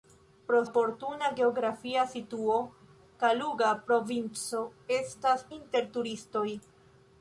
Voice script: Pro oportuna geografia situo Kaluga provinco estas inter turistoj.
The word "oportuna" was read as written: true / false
true